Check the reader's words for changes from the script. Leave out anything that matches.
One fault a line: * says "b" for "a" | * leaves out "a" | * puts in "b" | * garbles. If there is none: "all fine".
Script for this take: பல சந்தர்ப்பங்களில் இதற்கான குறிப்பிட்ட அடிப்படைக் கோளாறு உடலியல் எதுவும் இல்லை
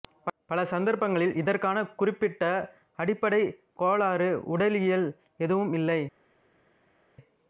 all fine